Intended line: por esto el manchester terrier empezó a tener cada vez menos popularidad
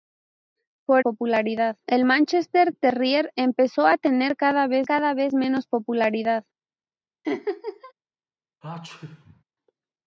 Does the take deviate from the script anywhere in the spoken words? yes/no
yes